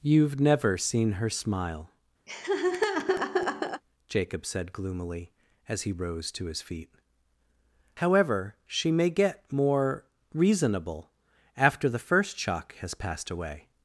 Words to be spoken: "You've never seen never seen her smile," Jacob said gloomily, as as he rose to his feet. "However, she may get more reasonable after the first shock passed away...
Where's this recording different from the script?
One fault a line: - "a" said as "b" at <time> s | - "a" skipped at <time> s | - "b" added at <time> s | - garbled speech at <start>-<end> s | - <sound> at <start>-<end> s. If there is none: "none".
- "never seen" skipped at 1.1 s
- laugh at 2.3-3.8 s
- "as" skipped at 5.8 s
- "has" added at 12.8 s